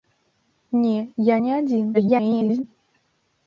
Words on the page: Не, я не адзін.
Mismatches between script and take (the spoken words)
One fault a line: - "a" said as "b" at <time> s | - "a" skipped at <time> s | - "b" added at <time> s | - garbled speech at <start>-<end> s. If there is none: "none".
- garbled speech at 1.9-2.6 s